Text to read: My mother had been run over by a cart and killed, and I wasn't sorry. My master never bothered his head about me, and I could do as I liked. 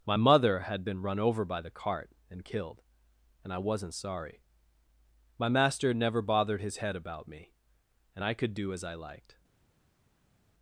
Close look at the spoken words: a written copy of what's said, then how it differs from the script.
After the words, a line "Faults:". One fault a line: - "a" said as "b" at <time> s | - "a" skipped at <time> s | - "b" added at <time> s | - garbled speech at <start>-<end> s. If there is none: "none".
My mother had been run over by the cart and killed, and I wasn't sorry. My master never bothered his head about me, and I could do as I liked.
Faults:
- "a" said as "the" at 1.6 s